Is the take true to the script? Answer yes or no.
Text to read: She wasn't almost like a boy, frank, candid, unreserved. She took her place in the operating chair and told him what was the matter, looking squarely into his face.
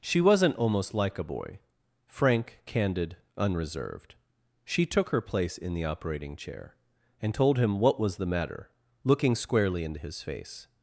yes